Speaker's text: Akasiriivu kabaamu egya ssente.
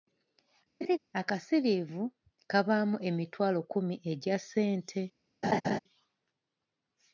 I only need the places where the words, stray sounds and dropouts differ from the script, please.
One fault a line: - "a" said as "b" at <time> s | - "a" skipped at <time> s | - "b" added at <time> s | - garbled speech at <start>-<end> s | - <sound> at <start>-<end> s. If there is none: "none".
- laugh at 0.8-1.0 s
- "emitwalo kkumi" added at 3.1 s
- laugh at 5.4-5.8 s